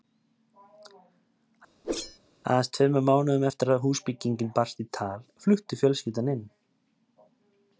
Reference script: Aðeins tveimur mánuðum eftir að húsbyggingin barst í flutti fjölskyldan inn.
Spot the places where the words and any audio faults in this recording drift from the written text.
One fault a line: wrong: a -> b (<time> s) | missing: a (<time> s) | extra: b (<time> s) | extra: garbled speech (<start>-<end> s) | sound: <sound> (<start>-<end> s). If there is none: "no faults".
sound: whoosh (1.8-2.2 s)
extra: tal (5.0 s)